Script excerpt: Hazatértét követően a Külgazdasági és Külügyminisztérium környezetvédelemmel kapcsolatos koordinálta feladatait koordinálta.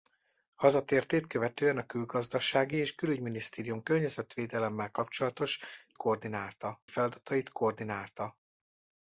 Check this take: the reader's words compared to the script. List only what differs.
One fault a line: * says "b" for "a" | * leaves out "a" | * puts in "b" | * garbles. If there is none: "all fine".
all fine